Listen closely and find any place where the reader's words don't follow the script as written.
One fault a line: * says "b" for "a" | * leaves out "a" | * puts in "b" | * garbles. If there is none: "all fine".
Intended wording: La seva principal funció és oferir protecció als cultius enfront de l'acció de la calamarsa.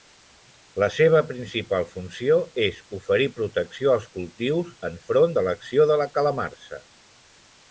all fine